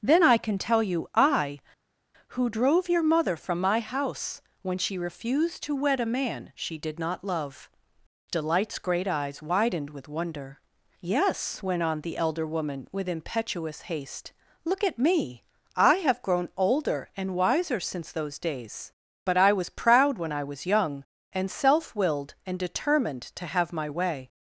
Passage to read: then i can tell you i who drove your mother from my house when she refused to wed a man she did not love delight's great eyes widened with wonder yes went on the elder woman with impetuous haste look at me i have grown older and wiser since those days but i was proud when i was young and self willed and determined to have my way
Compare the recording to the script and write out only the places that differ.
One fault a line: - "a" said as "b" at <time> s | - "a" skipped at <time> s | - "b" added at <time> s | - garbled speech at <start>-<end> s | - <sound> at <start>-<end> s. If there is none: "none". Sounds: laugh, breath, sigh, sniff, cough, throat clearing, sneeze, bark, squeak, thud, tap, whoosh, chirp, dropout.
none